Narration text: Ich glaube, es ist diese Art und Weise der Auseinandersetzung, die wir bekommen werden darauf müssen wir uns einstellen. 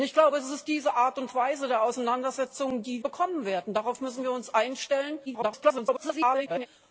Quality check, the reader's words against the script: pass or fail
fail